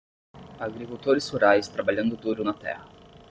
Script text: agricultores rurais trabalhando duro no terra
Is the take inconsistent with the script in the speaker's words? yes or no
yes